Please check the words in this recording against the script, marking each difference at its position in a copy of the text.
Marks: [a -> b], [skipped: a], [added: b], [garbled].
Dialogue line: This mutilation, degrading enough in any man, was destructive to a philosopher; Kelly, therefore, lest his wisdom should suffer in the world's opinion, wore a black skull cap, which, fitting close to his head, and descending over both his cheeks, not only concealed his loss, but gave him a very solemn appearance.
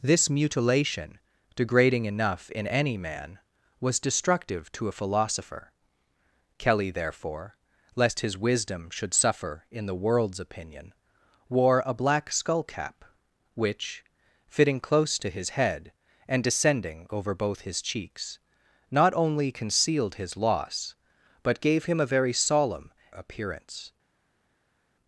This mutilation, degrading enough in any man, was destructive to a philosopher; Kelly, therefore, lest his wisdom should suffer in the world's opinion, wore a black skull cap, which, fitting close to his head, and descending over both his cheeks, not only concealed his loss, but gave him a very solemn appearance.